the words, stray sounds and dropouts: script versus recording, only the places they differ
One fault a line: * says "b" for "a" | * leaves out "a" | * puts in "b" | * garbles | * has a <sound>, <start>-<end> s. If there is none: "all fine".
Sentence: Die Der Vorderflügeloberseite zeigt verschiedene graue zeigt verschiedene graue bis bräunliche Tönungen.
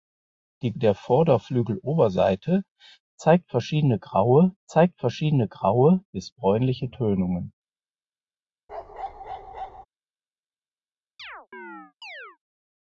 * has a bark, 8.7-9.9 s
* has a chirp, 11.2-12.4 s